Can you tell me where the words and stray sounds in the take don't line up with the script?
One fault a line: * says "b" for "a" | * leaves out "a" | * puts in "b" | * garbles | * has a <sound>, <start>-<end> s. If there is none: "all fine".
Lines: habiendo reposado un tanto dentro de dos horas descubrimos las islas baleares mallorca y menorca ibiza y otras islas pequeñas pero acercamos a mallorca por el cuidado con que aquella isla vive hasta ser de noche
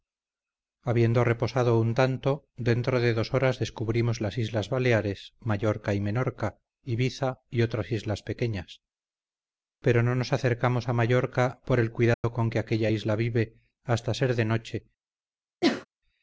* puts in "no nos"
* has a dropout, 12.1-12.2 s
* has a sneeze, 15.6-15.9 s